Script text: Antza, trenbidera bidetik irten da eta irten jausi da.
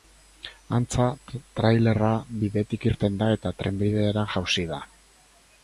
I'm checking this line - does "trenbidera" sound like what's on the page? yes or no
no